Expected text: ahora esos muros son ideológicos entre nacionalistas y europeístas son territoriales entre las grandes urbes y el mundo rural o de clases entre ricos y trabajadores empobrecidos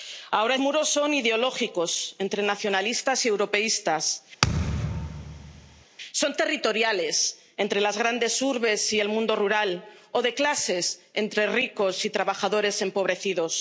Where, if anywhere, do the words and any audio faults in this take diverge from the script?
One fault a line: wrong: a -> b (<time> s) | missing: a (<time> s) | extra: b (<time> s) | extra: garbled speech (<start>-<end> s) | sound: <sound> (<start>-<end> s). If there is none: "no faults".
missing: esos (0.6 s)
sound: thud (4.4-5.8 s)